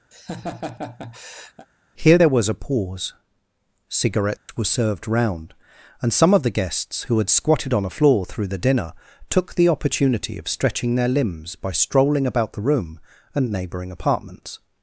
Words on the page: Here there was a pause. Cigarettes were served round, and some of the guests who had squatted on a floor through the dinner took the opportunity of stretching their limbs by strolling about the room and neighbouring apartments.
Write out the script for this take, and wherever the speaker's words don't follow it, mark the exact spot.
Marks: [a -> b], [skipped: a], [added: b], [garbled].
Here there was a pause. Cigarettes were served round, and some of the guests who had squatted on a floor through the dinner took the opportunity of stretching their limbs by strolling about the room and neighbouring apartments.